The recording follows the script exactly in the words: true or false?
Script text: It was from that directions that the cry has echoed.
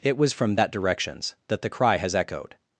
true